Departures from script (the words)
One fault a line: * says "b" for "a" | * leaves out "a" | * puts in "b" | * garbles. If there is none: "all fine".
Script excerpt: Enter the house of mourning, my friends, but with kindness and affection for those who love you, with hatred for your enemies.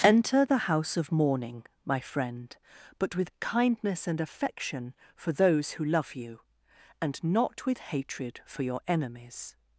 * says "friend" for "friends"
* puts in "and not"